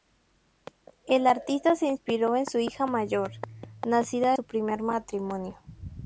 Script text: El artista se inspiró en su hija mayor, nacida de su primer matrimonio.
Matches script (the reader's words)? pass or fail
fail